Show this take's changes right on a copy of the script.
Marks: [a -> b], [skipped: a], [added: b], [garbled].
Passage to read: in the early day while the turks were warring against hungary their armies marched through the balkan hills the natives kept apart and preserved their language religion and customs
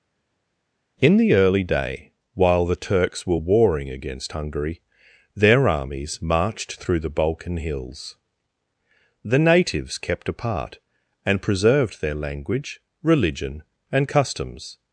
in the early day while the turks were warring against hungary their armies marched through the balkan hills the natives kept apart and preserved their language religion and customs